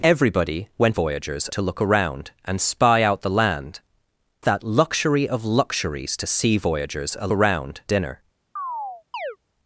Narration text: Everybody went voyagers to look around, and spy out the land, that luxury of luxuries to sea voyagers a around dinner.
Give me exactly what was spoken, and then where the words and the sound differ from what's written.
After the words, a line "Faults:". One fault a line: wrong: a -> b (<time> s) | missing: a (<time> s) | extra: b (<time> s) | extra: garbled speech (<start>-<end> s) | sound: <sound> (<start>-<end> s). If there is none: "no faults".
Everybody went voyagers to look around, and spy out the land, that luxury of luxuries to sea voyagers a around dinner.
Faults:
sound: chirp (8.6-9.4 s)